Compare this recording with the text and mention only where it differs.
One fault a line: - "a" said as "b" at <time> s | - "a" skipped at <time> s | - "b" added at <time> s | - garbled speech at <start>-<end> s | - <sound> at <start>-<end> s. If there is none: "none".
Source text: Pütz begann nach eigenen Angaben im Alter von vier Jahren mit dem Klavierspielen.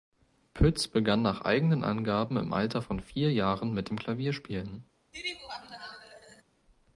- laugh at 5.1-6.4 s